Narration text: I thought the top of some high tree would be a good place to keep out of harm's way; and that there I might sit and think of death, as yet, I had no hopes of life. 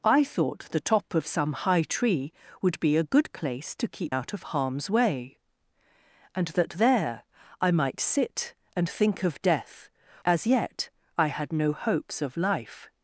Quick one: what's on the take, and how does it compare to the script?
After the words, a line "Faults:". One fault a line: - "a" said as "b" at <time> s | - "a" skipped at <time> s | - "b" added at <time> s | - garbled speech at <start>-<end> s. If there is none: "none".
I thought the top of some high tree would be a good place to keep out of harm's way; and that there I might sit and think of death, as yet, I had no hopes of life.
Faults:
none